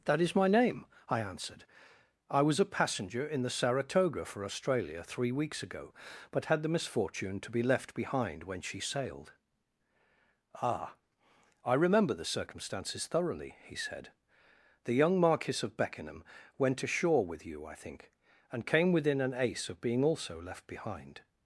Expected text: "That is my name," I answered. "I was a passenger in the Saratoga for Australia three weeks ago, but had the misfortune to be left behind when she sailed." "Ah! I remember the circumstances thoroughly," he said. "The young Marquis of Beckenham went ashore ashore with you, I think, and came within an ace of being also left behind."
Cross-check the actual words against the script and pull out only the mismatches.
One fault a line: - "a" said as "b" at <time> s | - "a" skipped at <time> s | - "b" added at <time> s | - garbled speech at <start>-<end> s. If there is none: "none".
- "ashore" skipped at 17.2 s